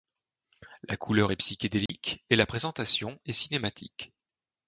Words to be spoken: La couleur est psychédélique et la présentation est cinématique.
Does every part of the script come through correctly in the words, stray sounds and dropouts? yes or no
no